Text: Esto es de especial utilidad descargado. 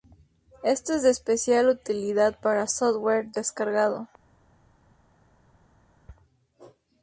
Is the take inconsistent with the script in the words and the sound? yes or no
yes